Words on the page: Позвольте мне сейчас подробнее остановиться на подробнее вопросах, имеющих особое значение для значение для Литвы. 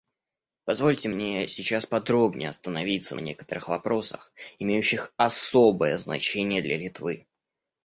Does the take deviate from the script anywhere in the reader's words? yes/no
yes